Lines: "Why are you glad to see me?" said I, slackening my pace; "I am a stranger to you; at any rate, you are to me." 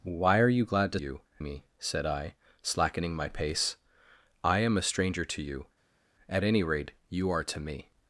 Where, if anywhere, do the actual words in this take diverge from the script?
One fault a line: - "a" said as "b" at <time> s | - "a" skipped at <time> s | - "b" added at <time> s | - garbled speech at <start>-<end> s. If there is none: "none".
- "see" said as "you" at 1.0 s